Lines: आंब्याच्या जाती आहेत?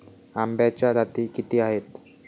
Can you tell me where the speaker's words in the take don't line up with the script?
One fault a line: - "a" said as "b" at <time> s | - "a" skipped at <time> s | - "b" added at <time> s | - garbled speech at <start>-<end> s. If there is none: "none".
- "किती" added at 1.3 s